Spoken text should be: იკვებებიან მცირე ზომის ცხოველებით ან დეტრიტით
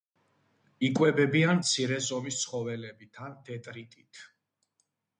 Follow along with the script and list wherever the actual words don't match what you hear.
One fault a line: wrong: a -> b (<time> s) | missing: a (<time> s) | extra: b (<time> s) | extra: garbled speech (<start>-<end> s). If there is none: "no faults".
no faults